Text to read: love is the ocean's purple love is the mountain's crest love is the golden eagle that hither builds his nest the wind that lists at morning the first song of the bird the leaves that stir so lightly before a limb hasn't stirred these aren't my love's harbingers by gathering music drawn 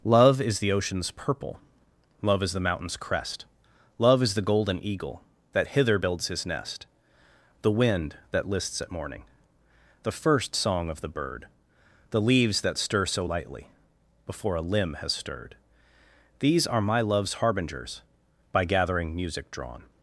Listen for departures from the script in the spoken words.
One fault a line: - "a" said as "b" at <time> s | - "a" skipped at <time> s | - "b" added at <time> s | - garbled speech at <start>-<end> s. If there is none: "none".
- "hasn't" said as "has" at 14.9 s
- "aren't" said as "are" at 16.7 s